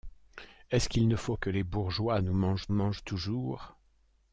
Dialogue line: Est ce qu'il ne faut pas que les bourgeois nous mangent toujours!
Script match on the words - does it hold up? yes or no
no